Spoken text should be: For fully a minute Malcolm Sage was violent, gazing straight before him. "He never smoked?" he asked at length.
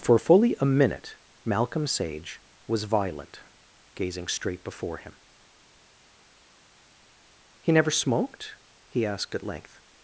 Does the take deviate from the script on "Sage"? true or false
false